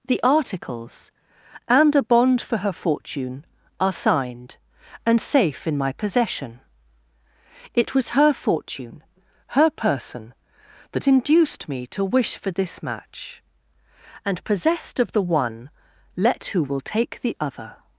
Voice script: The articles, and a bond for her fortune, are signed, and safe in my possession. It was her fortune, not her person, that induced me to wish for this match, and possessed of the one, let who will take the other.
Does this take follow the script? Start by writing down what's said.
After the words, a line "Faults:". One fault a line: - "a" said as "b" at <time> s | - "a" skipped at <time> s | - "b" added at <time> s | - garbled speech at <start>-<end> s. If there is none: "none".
The articles, and a bond for her fortune, are signed, and safe in my possession. It was her fortune, her person, that induced me to wish for this match, and possessed of the one, let who will take the other.
Faults:
- "not" skipped at 9.0 s